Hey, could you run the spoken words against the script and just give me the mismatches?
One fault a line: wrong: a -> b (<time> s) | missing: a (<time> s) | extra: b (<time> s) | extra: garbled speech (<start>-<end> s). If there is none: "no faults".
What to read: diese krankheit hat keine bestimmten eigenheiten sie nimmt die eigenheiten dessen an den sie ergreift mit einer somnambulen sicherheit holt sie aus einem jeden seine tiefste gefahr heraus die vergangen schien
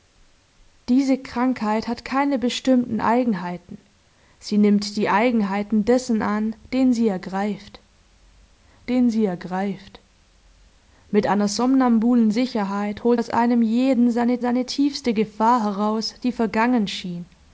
extra: den sie ergreift (8.9 s)
missing: sie (13.2 s)
extra: seine (14.4 s)